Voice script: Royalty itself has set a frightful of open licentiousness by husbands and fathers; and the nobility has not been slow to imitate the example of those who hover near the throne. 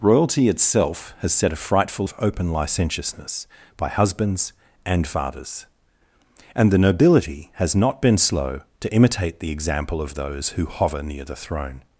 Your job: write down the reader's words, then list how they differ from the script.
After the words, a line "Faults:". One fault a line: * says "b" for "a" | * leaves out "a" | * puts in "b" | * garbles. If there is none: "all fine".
Royalty itself has set a frightful of open licentiousness by husbands and fathers; and the nobility has not been slow to imitate the example of those who hover near the throne.
Faults:
all fine